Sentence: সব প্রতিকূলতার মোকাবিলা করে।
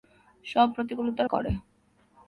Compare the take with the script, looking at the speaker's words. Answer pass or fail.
fail